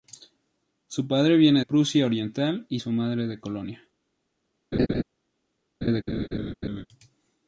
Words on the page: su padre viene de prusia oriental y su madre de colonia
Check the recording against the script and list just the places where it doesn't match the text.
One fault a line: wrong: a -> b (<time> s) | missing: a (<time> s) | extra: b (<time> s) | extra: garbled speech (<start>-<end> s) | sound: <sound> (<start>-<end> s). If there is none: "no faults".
missing: de (1.6 s)
sound: laugh (4.7-5.0 s)
sound: laugh (5.8-6.9 s)